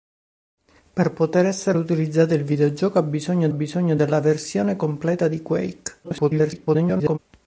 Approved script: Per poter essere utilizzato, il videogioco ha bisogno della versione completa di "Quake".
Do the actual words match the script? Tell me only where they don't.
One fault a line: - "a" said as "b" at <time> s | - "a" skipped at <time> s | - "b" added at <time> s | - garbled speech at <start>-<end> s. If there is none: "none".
- "bisogno" added at 3.5 s
- garbled speech at 6.0-7.2 s